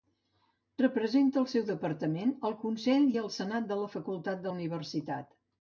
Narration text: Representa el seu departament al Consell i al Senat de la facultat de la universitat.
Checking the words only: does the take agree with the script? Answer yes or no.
no